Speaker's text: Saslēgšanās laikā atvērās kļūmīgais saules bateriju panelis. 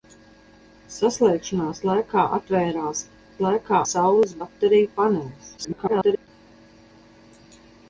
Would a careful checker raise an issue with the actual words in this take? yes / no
yes